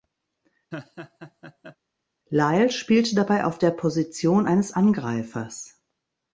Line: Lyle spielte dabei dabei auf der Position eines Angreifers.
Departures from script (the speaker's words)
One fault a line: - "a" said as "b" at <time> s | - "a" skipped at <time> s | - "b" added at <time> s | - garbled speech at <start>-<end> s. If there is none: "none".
- "dabei" skipped at 3.4 s